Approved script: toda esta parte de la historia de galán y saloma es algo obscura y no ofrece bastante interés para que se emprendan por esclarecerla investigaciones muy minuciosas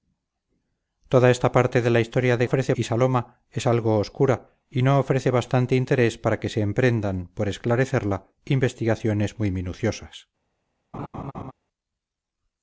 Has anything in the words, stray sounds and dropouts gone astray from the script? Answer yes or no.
yes